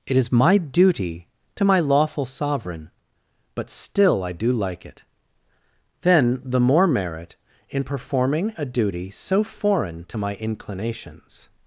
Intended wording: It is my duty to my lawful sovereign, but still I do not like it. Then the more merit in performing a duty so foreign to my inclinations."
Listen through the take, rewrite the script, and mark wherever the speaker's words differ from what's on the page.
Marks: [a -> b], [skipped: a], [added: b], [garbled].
It is my duty to my lawful sovereign, but still I do [skipped: not] like it. Then the more merit in performing a duty so foreign to my inclinations."